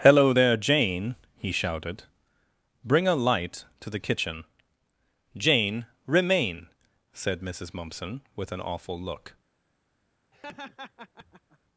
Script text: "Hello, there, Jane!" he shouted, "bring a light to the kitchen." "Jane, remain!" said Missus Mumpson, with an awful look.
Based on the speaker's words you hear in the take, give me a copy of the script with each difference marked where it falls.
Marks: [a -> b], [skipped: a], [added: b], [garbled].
"Hello, there, Jane!" he shouted, "bring a light to the kitchen." "Jane, remain!" said Missus Mumpson, with an awful look.